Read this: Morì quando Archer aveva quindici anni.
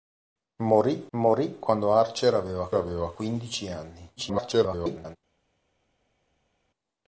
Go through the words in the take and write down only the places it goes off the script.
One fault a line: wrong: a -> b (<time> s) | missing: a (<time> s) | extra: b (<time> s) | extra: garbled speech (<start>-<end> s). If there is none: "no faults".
extra: morì (1.2 s)
extra: aveva (2.7 s)
extra: garbled speech (4.2-5.2 s)